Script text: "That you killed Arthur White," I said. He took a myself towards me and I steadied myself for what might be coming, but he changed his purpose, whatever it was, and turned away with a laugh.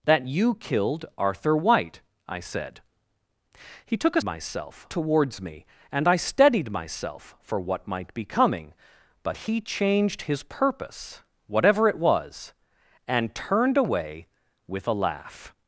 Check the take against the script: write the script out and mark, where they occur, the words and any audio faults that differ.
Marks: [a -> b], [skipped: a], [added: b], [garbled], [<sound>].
"That you killed Arthur White," I said. He took a myself towards me and I steadied myself for what might be coming, but he changed his purpose, whatever it was, and turned away with a laugh.